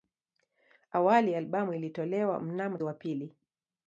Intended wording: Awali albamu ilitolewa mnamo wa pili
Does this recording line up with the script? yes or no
yes